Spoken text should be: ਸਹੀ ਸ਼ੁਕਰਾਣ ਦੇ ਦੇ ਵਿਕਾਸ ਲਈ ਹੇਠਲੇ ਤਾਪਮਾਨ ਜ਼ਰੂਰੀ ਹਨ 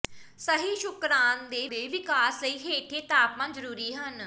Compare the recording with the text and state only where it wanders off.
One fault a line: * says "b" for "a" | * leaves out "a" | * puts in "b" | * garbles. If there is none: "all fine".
all fine